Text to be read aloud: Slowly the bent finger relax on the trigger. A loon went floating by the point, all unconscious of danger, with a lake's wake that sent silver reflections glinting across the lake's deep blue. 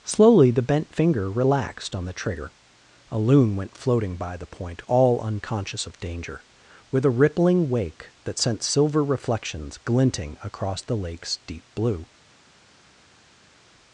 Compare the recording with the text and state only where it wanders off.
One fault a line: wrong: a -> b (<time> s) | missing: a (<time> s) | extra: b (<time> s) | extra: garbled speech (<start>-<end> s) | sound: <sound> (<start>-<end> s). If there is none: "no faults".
wrong: relax -> relaxed (1.3 s)
wrong: lake's -> rippling (7.1 s)